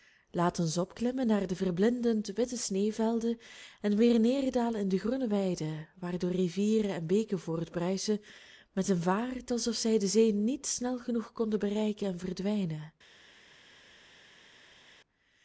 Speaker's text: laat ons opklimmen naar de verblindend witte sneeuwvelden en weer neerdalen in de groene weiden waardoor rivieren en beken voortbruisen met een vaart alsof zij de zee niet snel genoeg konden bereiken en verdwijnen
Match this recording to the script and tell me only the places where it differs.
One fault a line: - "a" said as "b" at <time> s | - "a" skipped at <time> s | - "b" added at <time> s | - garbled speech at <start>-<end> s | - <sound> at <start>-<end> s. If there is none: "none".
none